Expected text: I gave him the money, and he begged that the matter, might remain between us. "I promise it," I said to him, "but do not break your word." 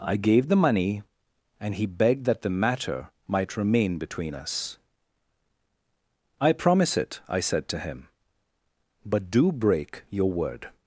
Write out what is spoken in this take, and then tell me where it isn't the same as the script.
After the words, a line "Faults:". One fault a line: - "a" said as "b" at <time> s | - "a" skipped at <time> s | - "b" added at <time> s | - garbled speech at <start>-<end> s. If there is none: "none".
I gave the money, and he begged that the matter, might remain between us. "I promise it," I said to him, "but do break your word."
Faults:
- "him" skipped at 0.5 s
- "not" skipped at 9.5 s